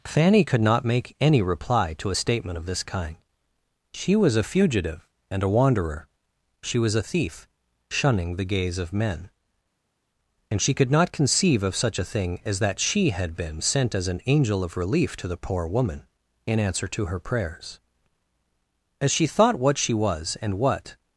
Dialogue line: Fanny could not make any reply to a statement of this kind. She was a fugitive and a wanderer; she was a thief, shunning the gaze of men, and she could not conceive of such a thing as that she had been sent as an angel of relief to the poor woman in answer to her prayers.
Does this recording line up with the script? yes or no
no